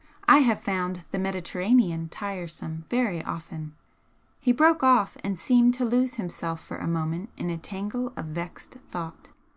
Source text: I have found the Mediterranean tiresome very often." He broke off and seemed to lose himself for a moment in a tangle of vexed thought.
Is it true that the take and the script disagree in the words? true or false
false